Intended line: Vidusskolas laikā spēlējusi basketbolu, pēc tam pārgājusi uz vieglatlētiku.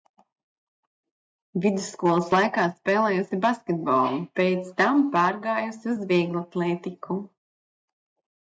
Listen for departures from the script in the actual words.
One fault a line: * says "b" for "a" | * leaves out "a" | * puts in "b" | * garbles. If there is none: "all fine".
all fine